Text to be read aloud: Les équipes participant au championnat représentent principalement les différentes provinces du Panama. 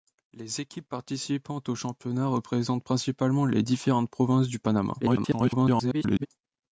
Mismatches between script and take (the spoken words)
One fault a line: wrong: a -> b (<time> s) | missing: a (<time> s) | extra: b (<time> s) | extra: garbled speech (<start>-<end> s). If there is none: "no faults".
extra: garbled speech (5.0-6.3 s)